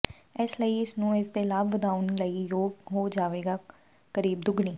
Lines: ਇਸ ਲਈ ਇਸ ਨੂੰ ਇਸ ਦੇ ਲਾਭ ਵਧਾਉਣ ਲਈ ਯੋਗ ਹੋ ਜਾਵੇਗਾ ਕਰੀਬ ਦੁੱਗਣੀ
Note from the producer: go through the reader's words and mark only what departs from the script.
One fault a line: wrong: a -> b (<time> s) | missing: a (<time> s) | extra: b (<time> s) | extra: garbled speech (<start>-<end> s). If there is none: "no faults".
no faults